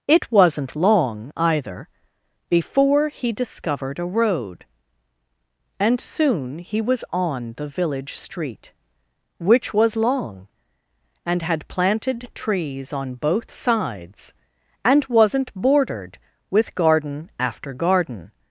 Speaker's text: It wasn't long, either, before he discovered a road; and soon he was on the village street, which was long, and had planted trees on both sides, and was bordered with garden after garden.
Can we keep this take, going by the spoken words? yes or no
no